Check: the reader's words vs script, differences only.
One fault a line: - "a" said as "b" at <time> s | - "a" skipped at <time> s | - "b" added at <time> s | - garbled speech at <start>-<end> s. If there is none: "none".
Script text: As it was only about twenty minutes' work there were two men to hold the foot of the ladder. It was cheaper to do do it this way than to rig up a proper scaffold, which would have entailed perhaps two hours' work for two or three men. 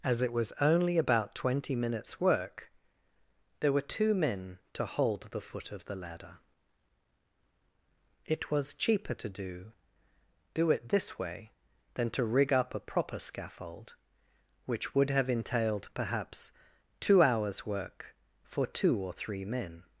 none